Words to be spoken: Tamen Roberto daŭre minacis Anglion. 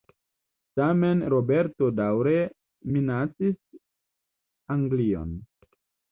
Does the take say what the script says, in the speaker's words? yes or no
yes